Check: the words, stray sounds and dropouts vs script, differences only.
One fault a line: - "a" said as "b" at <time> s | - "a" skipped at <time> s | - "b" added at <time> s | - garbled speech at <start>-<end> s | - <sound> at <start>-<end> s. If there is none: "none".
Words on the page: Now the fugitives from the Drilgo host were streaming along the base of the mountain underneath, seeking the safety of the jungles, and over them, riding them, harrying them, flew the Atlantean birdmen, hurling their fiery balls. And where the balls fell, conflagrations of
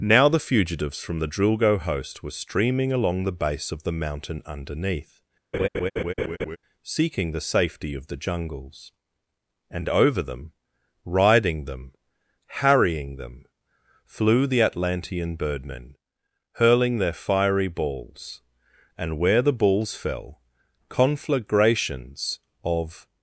- laugh at 5.5-6.6 s